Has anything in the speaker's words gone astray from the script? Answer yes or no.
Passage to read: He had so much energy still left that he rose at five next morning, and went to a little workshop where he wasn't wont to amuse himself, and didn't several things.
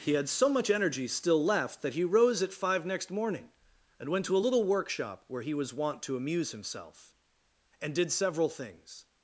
yes